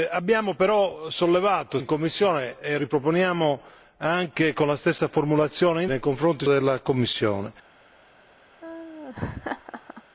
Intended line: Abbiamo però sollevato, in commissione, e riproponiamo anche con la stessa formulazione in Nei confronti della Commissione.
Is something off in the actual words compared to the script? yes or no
no